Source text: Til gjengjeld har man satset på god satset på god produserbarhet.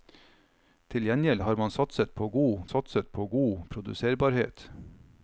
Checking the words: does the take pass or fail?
pass